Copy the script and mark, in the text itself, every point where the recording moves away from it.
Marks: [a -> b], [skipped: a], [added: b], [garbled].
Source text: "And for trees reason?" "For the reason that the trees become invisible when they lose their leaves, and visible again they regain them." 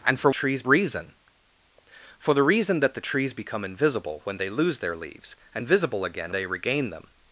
"And for trees reason?" "For the reason that the trees become invisible when they lose their leaves, and visible again they regain them."